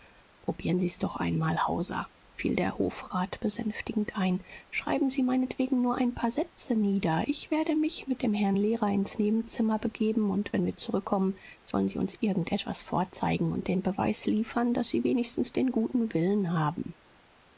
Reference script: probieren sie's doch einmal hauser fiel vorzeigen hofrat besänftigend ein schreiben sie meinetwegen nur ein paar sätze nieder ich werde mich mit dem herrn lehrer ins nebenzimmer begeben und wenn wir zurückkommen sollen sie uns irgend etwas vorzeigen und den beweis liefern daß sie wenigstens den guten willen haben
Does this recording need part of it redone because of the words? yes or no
yes